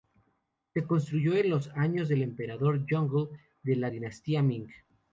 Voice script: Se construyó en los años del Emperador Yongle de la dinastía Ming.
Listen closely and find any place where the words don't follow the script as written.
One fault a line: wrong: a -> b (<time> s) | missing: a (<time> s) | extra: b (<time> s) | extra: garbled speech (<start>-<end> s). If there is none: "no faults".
no faults